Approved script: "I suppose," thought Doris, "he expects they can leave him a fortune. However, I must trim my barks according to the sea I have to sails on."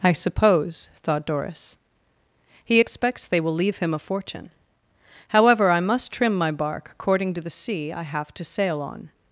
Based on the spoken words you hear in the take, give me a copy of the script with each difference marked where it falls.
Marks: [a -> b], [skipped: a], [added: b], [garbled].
"I suppose," thought Doris, "he expects they [can -> will] leave him a fortune. However, I must trim my [barks -> bark] according to the sea I have to [sails -> sail] on."